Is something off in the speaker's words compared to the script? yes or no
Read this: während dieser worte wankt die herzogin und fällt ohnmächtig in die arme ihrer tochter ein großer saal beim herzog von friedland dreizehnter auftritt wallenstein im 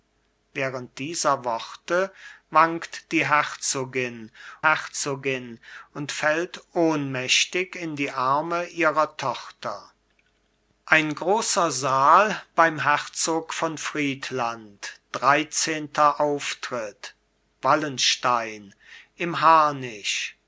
yes